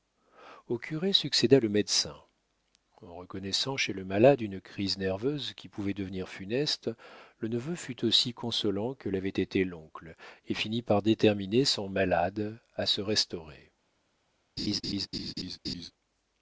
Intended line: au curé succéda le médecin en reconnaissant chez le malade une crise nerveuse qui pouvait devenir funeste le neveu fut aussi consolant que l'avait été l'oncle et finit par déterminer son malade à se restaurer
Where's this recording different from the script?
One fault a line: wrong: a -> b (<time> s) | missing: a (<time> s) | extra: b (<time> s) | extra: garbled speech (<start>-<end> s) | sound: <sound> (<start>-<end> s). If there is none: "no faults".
sound: laugh (14.6-15.9 s)